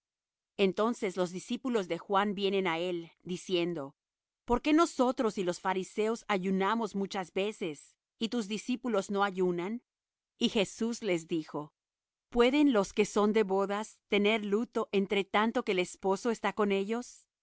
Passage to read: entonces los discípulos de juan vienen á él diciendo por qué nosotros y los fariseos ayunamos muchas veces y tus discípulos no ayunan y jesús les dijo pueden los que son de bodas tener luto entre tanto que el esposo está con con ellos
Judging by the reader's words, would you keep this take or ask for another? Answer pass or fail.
fail